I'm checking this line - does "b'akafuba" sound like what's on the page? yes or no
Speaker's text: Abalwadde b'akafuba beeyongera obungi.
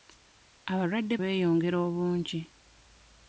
no